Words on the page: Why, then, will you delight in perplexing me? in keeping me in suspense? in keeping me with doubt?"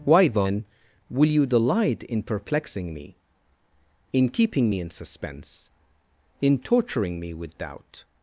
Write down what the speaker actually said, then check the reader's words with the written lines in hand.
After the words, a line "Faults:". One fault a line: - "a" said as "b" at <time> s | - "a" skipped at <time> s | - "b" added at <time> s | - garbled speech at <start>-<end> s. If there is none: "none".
Why, then, will you delight in perplexing me? in keeping me in suspense? in torturing me with doubt?"
Faults:
- "keeping" said as "torturing" at 6.6 s